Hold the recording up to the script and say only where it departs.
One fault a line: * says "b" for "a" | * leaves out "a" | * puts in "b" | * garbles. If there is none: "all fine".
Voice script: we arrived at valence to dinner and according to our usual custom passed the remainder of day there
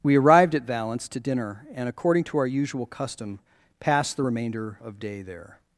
all fine